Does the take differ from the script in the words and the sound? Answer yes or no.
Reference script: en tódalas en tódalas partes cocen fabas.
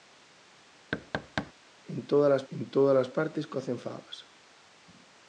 yes